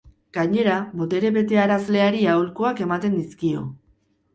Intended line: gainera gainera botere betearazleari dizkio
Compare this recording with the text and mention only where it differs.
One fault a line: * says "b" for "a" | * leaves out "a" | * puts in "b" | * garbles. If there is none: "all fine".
* leaves out "gainera"
* puts in "aholkuak ematen"